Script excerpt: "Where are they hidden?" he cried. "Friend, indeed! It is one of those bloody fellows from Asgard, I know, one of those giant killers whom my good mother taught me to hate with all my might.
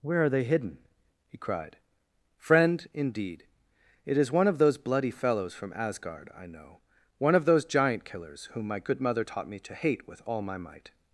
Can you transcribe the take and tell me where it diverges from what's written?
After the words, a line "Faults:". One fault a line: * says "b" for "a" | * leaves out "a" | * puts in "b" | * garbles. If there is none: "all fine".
"Where are they hidden?" he cried. "Friend, indeed! It is one of those bloody fellows from Asgard, I know, one of those giant killers whom my good mother taught me to hate with all my might.
Faults:
all fine